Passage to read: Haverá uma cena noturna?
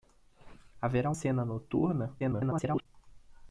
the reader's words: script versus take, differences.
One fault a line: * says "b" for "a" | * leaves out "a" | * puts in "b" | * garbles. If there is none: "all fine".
* leaves out "uma"
* garbles